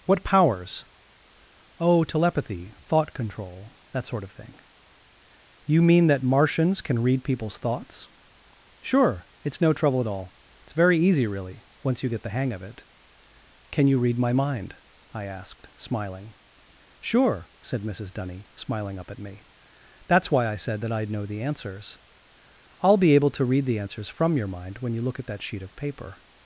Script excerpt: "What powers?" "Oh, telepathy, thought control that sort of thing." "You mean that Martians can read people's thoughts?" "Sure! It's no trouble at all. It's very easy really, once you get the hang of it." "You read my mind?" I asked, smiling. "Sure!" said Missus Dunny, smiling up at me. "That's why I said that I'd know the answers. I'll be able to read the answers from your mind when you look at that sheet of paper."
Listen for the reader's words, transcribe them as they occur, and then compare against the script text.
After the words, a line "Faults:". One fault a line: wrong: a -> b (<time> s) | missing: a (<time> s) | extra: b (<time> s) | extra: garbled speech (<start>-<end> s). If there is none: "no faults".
"What powers?" "Oh, telepathy, thought control that sort of thing." "You mean that Martians can read people's thoughts?" "Sure! It's no trouble at all. It's very easy really, once you get the hang of it." "Can you read my mind?" I asked, smiling. "Sure!" said Missus Dunny, smiling up at me. "That's why I said that I'd know the answers. I'll be able to read the answers from your mind when you look at that sheet of paper."
Faults:
extra: Can (13.7 s)